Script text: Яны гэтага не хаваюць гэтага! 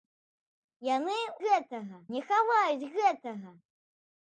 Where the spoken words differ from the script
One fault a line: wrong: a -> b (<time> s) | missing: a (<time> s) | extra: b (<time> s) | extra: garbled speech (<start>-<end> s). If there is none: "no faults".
no faults